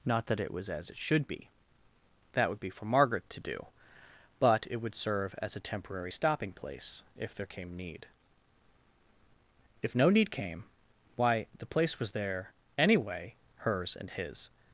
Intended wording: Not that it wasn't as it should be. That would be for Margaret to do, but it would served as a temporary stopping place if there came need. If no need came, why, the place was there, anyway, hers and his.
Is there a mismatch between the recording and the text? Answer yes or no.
yes